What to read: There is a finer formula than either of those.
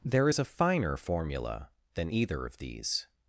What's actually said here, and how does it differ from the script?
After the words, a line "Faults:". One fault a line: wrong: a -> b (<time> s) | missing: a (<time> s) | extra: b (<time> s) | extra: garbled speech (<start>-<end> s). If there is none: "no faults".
There is a finer formula than either of these.
Faults:
wrong: those -> these (2.6 s)